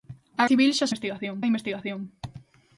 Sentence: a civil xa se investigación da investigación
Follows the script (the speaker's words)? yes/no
yes